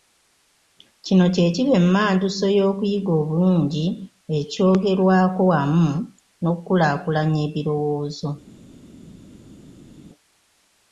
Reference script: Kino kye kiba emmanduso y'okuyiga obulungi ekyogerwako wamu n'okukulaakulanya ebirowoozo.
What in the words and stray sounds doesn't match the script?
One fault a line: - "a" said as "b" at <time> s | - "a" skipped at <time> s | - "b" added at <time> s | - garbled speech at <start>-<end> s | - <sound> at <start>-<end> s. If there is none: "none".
none